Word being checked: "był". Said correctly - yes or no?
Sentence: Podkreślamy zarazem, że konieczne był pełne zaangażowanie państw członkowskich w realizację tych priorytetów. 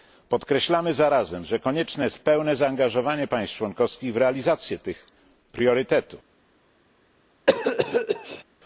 no